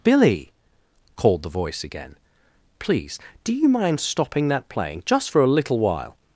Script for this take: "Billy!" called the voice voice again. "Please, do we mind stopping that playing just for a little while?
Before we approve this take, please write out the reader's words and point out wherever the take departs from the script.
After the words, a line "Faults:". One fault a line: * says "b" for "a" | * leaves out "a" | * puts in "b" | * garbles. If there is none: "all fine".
"Billy!" called the voice again. "Please, do you mind stopping that playing just for a little while?
Faults:
* leaves out "voice"
* says "you" for "we"